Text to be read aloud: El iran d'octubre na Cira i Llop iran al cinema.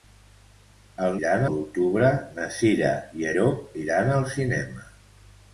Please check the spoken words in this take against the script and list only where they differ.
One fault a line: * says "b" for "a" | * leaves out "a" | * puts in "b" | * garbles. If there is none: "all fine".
all fine